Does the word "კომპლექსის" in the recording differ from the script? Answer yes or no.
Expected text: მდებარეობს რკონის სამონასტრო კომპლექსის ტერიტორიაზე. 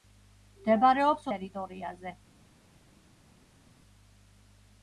yes